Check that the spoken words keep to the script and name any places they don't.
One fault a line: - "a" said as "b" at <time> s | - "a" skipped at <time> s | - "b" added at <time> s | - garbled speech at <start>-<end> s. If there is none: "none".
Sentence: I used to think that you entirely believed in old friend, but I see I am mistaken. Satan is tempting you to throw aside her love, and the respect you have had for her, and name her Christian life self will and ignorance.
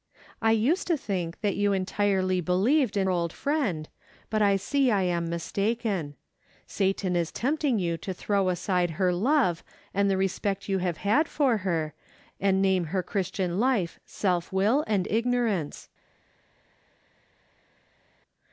none